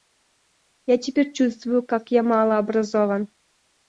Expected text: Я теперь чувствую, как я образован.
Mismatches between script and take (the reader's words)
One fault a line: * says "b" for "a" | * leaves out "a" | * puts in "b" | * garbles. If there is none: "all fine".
* puts in "мало"